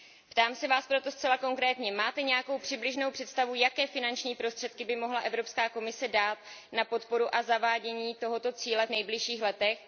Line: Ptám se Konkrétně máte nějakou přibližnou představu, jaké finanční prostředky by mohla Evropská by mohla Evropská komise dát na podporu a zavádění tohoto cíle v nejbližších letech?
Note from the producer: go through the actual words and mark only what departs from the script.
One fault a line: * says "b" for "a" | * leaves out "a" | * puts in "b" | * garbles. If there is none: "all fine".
* puts in "Vás proto zcela"
* leaves out "by mohla Evropská"